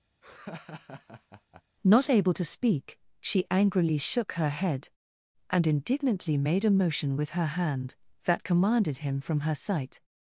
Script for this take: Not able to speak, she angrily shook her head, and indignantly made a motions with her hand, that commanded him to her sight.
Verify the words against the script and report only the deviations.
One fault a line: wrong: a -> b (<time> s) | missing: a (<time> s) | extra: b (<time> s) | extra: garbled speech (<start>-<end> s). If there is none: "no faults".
wrong: motions -> motion (6.7 s)
wrong: to -> from (9.2 s)